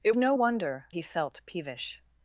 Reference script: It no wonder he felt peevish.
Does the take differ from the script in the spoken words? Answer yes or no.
no